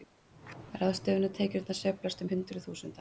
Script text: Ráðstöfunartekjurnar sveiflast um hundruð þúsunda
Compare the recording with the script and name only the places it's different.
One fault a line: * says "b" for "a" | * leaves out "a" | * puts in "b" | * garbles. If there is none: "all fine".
all fine